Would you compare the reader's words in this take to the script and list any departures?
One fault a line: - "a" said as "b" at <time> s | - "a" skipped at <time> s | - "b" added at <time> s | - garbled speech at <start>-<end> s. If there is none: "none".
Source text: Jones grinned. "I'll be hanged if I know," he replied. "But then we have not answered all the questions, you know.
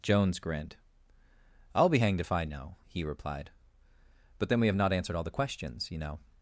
none